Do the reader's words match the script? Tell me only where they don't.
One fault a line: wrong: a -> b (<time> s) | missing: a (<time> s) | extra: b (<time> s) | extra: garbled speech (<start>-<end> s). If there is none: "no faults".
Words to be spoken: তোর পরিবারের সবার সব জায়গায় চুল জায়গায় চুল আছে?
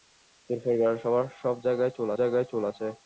no faults